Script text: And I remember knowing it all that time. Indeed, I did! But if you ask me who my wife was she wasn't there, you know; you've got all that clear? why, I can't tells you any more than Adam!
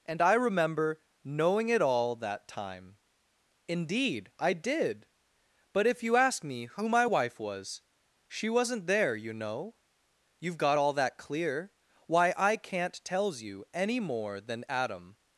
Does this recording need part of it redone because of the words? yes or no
no